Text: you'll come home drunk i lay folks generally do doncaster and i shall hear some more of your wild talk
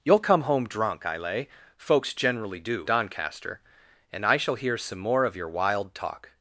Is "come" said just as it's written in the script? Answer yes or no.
yes